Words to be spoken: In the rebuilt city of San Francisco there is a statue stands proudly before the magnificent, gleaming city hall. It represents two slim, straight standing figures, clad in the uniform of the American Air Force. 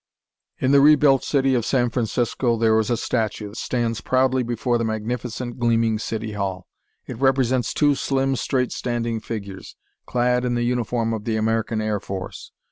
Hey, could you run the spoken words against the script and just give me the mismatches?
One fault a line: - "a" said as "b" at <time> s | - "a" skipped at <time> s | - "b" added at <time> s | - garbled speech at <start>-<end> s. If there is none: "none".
none